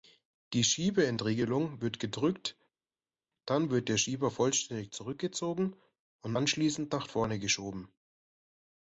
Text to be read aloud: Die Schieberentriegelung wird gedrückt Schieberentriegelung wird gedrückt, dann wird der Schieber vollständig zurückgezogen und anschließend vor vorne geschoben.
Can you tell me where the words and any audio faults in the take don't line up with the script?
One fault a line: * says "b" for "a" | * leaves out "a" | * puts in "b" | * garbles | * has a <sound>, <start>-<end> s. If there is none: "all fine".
* leaves out "Schieberentriegelung wird gedrückt"
* says "nach" for "vor"